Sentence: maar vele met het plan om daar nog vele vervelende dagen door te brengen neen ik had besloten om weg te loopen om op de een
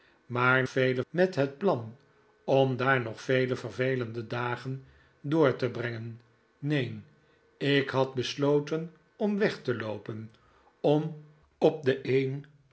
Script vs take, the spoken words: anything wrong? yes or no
no